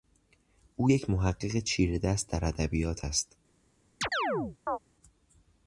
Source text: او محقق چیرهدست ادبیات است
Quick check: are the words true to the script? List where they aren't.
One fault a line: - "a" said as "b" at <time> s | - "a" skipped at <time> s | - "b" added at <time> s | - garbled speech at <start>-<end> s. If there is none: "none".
- "یک" added at 0.9 s
- "در" added at 2.3 s